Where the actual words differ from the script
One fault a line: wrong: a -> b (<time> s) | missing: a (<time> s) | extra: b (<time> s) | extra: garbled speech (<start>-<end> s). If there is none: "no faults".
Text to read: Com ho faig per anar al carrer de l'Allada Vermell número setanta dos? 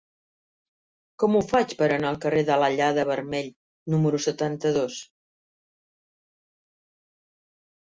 no faults